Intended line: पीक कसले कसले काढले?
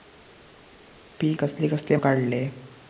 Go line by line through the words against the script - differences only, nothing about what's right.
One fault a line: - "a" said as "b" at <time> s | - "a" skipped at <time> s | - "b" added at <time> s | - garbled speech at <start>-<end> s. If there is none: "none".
none